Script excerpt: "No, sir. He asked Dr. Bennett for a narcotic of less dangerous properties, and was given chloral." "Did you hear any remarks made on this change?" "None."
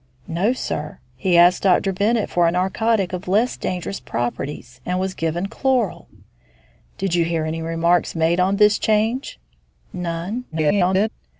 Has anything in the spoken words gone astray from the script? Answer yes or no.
yes